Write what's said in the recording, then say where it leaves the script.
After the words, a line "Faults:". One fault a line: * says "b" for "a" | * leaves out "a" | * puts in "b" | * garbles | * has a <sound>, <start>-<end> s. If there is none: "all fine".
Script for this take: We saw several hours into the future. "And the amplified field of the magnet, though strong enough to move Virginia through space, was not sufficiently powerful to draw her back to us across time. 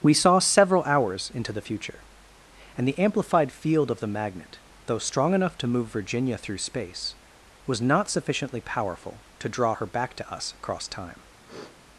We saw several hours into the future. "And the amplified field of the magnet, though strong enough to move Virginia through space, was not sufficiently powerful to draw her back to us across time.
Faults:
* has a sniff, 11.5-11.8 s